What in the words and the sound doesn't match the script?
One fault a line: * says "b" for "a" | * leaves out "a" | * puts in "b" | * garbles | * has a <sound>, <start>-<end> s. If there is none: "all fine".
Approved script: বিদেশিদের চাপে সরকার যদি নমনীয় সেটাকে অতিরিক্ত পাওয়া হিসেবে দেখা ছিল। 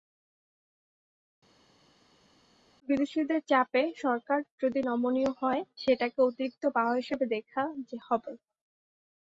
* puts in "হয়"
* says "হবে" for "ছিল"